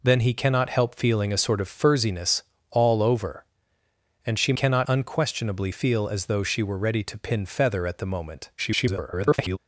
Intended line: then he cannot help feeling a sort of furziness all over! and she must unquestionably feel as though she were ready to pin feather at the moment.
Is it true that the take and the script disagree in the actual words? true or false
true